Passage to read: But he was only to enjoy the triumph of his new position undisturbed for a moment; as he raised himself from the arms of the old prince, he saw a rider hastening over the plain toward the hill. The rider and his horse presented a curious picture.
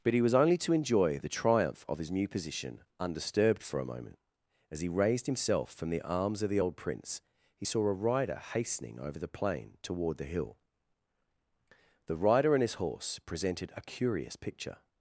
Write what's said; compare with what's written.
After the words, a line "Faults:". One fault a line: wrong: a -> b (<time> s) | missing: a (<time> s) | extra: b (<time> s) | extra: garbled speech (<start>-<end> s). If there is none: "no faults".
But he was only to enjoy the triumph of his new position undisturbed for a moment; as he raised himself from the arms of the old prince, he saw a rider hastening over the plain toward the hill. The rider and his horse presented a curious picture.
Faults:
no faults